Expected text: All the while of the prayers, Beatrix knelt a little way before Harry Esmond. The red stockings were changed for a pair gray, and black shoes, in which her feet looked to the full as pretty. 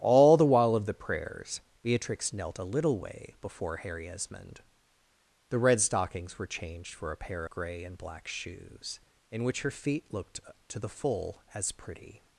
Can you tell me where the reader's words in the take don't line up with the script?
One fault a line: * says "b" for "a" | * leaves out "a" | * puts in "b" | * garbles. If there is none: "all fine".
all fine